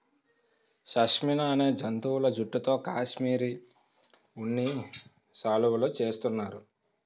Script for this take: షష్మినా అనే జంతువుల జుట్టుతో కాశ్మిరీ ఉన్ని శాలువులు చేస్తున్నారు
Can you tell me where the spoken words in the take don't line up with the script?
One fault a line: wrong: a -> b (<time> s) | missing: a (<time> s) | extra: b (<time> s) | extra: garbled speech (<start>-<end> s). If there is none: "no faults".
no faults